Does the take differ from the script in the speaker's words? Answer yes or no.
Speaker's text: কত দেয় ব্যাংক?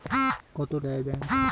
no